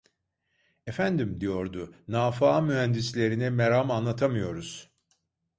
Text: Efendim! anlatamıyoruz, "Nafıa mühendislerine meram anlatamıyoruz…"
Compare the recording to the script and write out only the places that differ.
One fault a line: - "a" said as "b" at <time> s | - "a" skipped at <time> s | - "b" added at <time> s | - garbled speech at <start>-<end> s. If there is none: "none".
- "anlatamıyoruz" said as "diyordu" at 1.4 s